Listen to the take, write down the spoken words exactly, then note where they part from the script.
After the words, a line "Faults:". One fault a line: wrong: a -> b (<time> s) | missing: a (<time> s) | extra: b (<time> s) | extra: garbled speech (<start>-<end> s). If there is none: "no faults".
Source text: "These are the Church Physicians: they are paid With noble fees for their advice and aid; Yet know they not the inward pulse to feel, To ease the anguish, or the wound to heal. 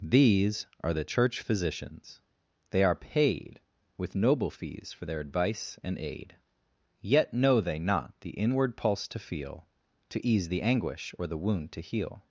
"These are the Church Physicians: they are paid With noble fees for their advice and aid; Yet know they not the inward pulse to feel, To ease the anguish, or the wound to heal.
Faults:
no faults